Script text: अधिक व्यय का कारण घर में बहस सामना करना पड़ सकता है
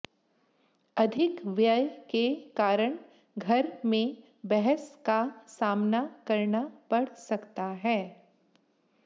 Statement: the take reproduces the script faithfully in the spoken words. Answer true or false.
false